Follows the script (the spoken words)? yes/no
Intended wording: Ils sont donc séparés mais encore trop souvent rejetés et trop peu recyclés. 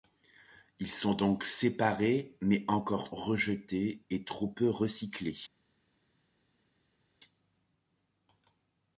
no